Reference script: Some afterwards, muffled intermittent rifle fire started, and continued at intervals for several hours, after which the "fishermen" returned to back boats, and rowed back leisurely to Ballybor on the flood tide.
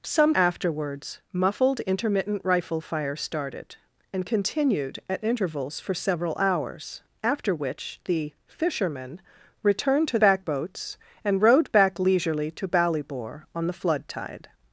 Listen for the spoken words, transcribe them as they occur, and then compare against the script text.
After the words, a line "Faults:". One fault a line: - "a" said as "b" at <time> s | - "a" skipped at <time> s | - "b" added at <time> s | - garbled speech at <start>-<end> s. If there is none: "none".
Some afterwards, muffled intermittent rifle fire started, and continued at intervals for several hours, after which the "fishermen" returned to back boats, and rowed back leisurely to Ballybor on the flood tide.
Faults:
none